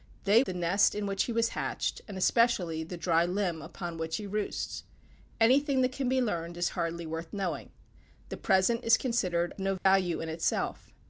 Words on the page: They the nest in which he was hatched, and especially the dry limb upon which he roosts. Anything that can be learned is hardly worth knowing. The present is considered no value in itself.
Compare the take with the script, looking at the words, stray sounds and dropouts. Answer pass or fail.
fail